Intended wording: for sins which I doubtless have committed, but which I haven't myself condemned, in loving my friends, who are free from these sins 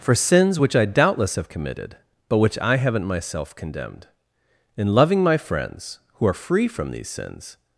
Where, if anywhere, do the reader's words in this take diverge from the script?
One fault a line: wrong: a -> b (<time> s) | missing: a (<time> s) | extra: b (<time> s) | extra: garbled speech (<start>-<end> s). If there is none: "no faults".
no faults